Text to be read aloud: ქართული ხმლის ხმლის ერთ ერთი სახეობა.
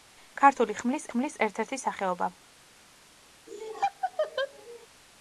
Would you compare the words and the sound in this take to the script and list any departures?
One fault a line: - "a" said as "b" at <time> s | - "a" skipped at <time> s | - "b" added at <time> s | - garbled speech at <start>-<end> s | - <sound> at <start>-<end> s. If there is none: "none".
- laugh at 3.5-4.9 s